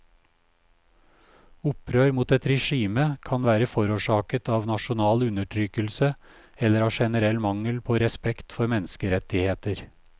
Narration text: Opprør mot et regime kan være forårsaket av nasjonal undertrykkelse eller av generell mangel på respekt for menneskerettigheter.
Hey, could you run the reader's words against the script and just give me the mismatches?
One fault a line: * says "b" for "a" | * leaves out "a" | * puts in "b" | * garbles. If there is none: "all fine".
all fine